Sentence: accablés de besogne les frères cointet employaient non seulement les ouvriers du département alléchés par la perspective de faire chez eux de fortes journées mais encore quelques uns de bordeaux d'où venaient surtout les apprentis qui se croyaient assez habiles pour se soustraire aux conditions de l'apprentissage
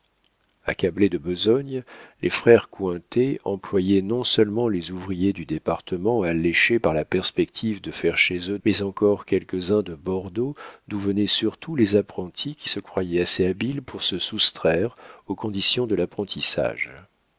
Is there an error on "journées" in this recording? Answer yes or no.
yes